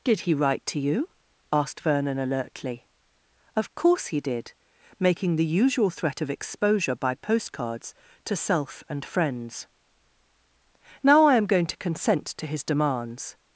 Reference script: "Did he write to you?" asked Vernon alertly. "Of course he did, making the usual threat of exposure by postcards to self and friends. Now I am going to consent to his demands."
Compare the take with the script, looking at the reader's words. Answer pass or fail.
pass